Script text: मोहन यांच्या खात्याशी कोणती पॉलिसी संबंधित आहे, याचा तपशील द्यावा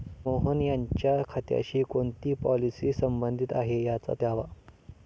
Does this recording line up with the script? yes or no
no